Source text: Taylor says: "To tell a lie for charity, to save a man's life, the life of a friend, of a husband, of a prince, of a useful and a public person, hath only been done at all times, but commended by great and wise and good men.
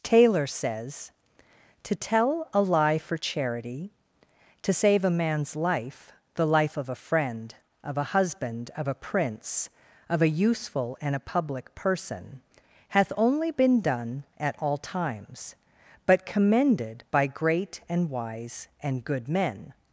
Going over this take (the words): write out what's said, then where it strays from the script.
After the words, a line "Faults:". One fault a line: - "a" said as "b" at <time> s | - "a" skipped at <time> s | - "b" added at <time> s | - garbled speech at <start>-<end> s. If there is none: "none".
Taylor says: "To tell a lie for charity, to save a man's life, the life of a friend, of a husband, of a prince, of a useful and a public person, hath only been done at all times, but commended by great and wise and good men.
Faults:
none